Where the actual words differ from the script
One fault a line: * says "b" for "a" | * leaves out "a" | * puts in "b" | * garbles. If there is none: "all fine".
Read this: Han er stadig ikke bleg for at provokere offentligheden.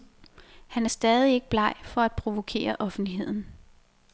all fine